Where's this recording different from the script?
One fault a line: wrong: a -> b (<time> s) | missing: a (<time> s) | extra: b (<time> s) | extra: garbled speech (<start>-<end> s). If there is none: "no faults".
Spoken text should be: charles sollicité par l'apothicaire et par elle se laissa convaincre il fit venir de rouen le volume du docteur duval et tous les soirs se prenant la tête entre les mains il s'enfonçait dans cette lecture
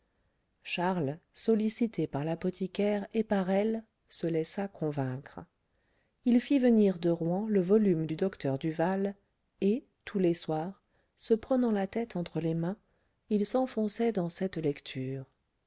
no faults